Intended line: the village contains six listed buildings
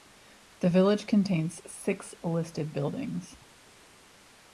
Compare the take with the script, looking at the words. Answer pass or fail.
pass